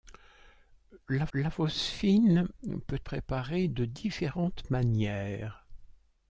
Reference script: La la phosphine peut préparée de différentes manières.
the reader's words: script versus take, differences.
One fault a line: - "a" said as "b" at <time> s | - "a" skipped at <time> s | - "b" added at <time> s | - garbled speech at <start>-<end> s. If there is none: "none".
none